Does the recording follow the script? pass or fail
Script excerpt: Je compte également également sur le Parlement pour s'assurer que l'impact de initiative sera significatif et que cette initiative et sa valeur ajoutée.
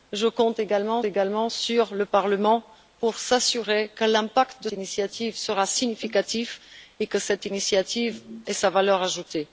pass